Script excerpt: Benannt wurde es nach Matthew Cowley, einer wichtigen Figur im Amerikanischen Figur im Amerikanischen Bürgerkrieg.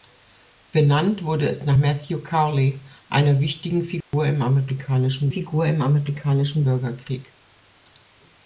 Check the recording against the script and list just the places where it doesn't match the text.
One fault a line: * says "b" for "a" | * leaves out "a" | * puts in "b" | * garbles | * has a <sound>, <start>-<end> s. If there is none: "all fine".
* has a dropout, 4.0-4.1 s